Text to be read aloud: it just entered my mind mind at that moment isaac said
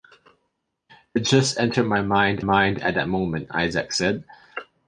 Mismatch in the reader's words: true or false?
false